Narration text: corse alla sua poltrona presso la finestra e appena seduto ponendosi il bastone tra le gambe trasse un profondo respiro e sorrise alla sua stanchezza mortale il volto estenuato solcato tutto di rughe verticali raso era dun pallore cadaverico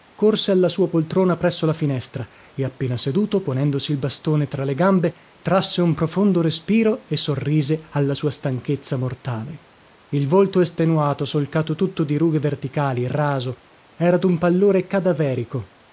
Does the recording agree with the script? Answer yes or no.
yes